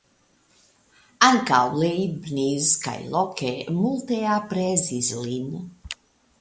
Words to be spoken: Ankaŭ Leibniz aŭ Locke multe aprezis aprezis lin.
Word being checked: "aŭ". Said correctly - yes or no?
no